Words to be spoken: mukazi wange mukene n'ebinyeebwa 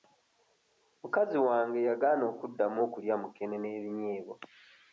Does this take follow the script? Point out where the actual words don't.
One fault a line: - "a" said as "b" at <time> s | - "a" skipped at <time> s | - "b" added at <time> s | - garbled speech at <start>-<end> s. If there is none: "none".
- "yagaana okuddamu okulya" added at 1.9 s